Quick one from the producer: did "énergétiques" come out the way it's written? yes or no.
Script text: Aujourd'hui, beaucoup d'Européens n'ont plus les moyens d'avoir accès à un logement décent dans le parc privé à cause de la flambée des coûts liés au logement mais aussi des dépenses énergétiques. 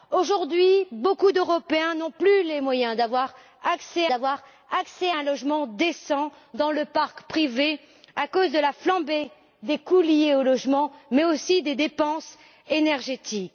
yes